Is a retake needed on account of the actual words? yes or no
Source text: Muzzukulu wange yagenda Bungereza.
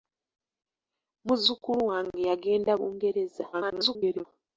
yes